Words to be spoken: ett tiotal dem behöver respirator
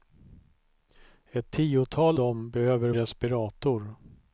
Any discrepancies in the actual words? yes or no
no